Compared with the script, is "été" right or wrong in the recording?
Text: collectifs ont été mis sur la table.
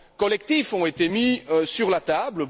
right